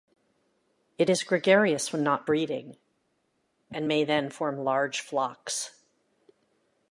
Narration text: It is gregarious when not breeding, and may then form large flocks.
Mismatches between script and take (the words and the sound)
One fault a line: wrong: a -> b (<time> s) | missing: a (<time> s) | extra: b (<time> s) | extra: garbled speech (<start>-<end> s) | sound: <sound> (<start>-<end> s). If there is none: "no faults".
no faults